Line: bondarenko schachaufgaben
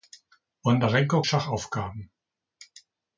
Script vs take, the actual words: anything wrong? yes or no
no